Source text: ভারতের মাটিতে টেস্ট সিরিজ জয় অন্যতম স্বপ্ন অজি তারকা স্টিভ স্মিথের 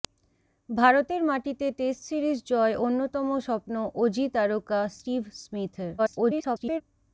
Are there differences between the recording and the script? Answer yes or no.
yes